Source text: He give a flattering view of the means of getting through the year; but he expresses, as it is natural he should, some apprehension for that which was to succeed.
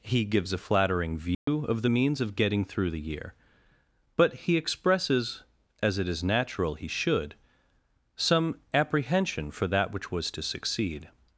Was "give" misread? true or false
true